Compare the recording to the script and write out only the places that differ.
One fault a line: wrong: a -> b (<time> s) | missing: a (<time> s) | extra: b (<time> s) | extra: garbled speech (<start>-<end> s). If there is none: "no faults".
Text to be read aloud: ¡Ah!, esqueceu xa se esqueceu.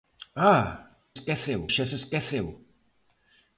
no faults